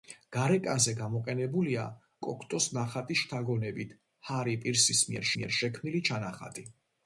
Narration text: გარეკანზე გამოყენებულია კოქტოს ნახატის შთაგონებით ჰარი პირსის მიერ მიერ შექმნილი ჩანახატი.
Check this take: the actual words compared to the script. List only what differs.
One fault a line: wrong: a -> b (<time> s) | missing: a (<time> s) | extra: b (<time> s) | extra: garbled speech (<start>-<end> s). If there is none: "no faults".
no faults